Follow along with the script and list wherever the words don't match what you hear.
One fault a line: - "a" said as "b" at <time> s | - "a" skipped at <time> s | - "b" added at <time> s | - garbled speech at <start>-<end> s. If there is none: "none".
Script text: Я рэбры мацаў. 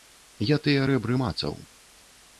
- "тыя" added at 0.7 s